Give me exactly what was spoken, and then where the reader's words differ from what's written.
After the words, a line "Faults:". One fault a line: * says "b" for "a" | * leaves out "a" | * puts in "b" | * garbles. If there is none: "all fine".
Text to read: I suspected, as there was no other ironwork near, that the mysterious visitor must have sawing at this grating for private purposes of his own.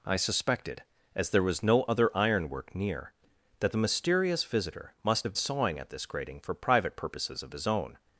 I suspected, as there was no other ironwork near, that the mysterious visitor must have sawing at this grating for private purposes of his own.
Faults:
all fine